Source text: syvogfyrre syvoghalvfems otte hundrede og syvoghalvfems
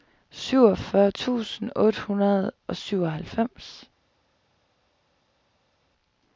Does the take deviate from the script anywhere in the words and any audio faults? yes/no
yes